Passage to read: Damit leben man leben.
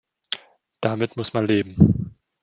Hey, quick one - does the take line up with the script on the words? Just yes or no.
no